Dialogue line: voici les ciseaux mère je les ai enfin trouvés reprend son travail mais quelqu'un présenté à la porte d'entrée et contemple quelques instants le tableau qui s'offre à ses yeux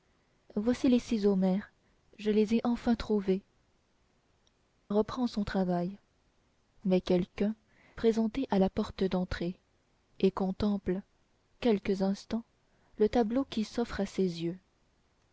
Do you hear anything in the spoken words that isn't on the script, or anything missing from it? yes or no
no